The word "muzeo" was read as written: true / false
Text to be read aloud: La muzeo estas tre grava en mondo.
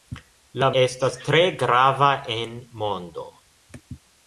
false